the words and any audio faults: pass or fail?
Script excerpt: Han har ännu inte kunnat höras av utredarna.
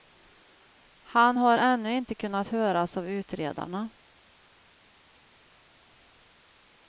pass